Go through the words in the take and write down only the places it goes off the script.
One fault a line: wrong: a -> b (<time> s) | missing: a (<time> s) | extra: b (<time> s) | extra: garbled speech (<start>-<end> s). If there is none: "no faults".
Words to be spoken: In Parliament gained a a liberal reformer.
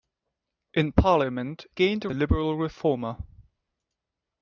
no faults